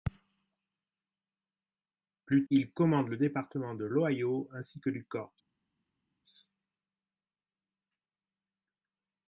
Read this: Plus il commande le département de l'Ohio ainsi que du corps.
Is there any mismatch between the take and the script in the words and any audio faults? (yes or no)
no